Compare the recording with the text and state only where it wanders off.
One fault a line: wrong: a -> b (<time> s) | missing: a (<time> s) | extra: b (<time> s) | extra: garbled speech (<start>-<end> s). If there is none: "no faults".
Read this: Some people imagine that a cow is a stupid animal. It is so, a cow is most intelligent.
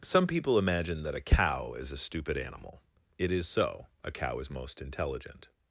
no faults